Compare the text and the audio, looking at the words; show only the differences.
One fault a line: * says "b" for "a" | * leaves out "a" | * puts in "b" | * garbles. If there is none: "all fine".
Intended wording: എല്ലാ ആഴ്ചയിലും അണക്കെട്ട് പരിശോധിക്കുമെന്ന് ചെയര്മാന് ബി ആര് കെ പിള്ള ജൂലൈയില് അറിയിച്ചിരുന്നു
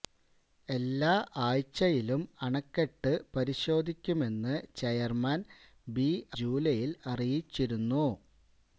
* leaves out "ആര് കെ പിള്ള"